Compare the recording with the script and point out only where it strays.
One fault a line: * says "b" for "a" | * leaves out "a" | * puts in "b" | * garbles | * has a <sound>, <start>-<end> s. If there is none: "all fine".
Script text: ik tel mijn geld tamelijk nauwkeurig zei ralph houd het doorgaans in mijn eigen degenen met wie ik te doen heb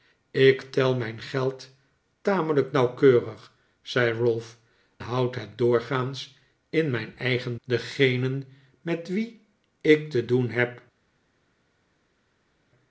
all fine